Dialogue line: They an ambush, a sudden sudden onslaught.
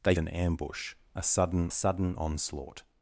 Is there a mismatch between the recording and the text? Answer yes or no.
no